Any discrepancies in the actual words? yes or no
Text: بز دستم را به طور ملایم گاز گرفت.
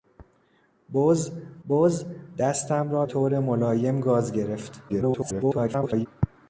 yes